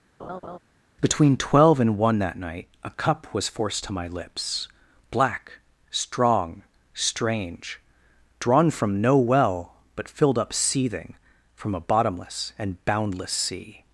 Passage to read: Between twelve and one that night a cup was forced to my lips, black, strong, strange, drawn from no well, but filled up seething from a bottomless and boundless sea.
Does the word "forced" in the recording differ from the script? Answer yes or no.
no